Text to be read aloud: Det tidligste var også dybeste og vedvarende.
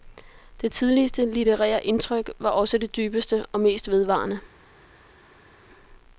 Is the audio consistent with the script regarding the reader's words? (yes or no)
no